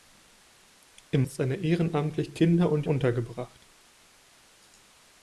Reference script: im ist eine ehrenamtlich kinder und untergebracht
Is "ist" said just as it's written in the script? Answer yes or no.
yes